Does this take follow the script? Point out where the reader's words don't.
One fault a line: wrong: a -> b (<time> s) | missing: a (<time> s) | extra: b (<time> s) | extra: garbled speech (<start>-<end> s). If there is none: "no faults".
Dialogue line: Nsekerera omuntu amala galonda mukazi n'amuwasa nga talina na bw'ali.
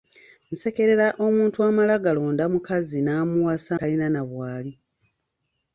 missing: nga (3.7 s)